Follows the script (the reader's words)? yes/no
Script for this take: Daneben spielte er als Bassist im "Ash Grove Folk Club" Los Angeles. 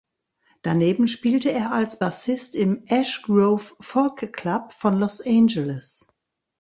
no